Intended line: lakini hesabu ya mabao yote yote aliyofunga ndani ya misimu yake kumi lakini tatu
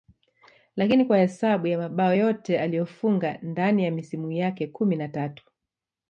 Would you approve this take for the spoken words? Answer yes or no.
no